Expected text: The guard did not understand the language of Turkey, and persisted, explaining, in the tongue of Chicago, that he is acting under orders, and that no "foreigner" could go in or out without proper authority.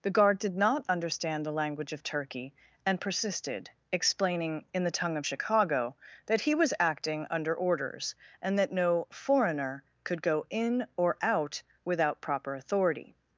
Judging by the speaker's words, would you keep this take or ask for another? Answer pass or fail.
fail